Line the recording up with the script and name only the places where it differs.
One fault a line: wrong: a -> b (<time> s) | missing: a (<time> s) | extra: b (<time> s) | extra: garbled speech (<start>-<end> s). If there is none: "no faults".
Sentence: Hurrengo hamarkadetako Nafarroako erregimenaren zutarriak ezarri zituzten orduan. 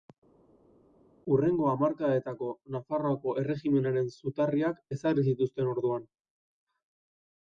no faults